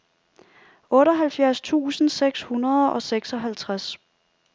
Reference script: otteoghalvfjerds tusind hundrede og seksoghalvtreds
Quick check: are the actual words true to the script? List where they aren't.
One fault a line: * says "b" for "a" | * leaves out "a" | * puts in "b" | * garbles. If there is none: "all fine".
* puts in "seks"